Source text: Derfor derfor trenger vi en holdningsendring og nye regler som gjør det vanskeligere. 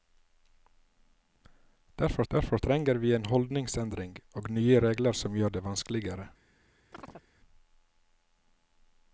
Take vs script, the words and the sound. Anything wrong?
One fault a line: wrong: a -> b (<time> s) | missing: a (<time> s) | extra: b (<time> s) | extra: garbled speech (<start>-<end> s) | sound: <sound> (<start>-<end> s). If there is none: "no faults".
sound: chirp (6.9-7.3 s)